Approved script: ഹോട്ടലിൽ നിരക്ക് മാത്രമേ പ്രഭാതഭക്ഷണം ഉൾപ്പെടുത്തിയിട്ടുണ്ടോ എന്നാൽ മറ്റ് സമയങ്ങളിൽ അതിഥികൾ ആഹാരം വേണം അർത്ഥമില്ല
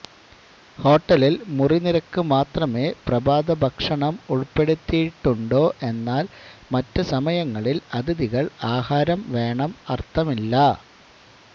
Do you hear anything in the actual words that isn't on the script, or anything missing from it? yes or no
yes